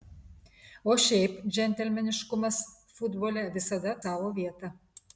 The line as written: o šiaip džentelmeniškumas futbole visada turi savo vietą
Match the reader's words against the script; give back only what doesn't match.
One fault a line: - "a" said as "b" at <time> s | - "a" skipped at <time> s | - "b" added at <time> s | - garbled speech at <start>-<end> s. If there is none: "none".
- "turi" skipped at 4.0 s